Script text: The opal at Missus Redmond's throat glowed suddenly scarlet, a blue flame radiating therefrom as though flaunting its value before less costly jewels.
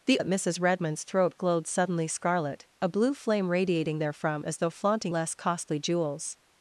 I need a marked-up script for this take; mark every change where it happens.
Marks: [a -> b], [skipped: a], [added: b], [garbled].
The [skipped: opal] at Missus Redmond's throat glowed suddenly scarlet, a blue flame radiating therefrom as though flaunting [skipped: its value before] less costly jewels.